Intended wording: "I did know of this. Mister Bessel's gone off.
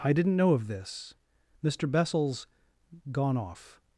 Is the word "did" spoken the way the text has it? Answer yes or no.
no